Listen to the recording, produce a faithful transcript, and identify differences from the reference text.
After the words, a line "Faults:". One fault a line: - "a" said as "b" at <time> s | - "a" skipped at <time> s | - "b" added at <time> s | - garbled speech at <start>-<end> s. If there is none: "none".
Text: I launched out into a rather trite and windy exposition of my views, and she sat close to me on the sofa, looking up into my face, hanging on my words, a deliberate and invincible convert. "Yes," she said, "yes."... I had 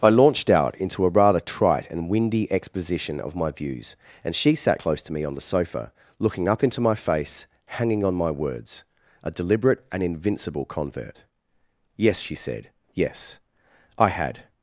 I launched out into a rather trite and windy exposition of my views, and she sat close to me on the sofa, looking up into my face, hanging on my words, a deliberate and invincible convert. "Yes," she said, "yes."... I had
Faults:
none